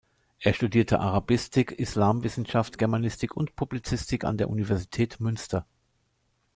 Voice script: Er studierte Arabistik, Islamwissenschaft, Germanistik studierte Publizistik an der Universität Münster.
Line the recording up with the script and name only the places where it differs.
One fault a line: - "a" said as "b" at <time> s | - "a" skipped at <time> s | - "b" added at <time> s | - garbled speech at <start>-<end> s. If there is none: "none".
- "studierte" said as "und" at 3.4 s